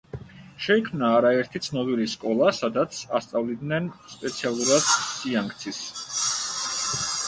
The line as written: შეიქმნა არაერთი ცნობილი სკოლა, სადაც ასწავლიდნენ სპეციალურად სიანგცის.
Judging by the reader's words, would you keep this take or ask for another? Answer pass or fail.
pass